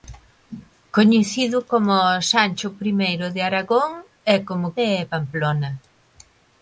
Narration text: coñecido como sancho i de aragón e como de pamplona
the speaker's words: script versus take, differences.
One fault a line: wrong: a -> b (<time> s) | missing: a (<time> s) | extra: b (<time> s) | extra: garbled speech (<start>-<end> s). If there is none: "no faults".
no faults